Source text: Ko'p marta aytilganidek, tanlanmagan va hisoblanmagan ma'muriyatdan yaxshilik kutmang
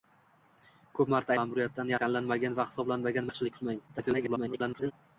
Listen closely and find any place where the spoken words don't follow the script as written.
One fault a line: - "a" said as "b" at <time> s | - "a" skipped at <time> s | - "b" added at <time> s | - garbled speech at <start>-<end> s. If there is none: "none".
- "aytilganidek" said as "ma'muriyatdan" at 1.4 s
- "ma'muriyatdan" skipped at 3.3 s
- garbled speech at 3.9-4.9 s